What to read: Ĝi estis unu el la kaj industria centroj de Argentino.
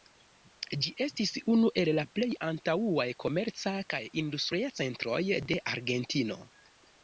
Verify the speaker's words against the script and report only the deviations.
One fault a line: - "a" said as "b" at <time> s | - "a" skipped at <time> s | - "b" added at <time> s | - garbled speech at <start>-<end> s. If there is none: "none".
- "plej antaŭaj komerca" added at 2.1 s